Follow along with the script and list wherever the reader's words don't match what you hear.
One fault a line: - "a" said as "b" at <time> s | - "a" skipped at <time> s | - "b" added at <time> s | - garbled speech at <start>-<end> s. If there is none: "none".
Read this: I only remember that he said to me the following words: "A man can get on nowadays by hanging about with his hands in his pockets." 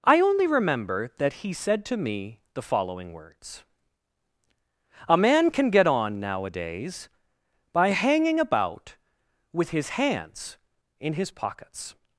none